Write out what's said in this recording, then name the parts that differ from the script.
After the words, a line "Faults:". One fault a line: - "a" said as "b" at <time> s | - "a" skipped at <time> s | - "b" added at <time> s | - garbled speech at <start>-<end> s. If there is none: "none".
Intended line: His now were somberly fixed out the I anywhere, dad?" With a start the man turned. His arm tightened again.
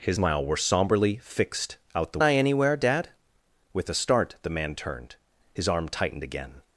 His now were somberly fixed out the I anywhere, dad?" With a start the man turned. His arm tightened again.
Faults:
none